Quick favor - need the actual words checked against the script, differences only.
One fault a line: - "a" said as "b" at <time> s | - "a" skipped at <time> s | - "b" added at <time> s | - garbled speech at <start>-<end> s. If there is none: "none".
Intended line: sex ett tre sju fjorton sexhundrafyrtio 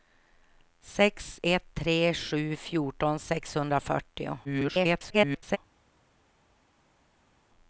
- garbled speech at 4.4-5.6 s